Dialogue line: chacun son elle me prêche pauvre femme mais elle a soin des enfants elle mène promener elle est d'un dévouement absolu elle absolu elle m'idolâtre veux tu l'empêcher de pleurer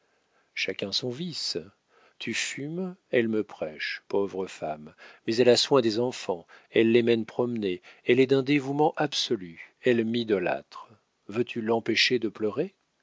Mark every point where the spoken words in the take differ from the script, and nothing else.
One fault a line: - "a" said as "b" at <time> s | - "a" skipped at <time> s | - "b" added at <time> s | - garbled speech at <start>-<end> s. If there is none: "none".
- "vice tu fumes" added at 1.1 s
- "les" added at 6.9 s
- "absolu elle" skipped at 10.0 s